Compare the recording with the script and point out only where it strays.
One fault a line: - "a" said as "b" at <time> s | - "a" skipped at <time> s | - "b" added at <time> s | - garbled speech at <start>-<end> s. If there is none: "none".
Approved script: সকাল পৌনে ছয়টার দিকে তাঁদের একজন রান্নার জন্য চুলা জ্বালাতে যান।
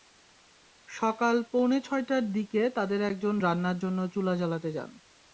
none